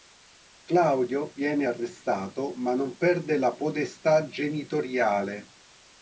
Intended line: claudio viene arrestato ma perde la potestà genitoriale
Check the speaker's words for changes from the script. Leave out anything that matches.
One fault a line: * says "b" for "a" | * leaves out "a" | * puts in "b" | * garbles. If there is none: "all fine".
* puts in "non"